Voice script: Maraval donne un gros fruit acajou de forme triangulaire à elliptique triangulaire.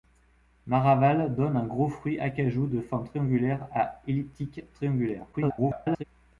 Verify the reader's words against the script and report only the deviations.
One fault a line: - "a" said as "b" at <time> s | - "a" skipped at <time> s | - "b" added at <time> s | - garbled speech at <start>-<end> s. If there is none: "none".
- garbled speech at 5.3-6.0 s